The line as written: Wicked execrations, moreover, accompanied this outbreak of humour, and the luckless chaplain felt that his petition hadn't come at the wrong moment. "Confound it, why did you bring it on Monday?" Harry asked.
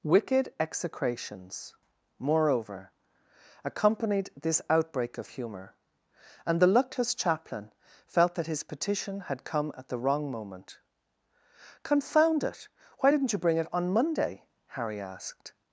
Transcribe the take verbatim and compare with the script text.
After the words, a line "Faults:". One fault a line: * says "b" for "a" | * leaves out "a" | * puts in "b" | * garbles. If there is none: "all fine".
Wicked execrations, moreover, accompanied this outbreak of humour, and the luckless chaplain felt that his petition had come at the wrong moment. "Confound it, why didn't you bring it on Monday?" Harry asked.
Faults:
* says "had" for "hadn't"
* says "didn't" for "did"